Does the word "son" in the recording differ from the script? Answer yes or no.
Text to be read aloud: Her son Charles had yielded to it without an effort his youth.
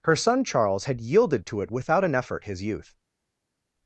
no